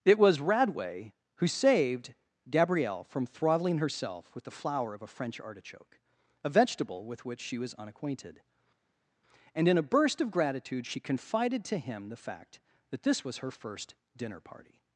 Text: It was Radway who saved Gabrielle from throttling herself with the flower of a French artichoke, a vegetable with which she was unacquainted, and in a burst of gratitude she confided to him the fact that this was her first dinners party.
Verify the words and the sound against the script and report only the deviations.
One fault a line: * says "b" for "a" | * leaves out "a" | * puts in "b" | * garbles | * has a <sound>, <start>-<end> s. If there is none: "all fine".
* says "dinner" for "dinners"